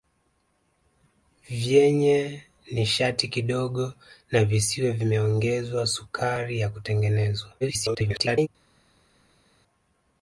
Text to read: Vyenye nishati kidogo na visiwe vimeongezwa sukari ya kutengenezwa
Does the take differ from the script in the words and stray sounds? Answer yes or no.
yes